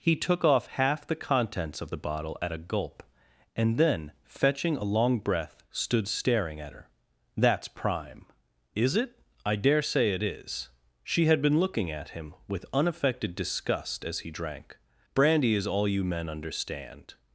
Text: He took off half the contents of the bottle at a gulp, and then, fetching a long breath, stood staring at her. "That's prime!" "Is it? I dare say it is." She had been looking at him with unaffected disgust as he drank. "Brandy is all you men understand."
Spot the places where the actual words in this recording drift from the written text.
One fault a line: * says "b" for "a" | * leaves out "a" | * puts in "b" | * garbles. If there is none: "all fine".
all fine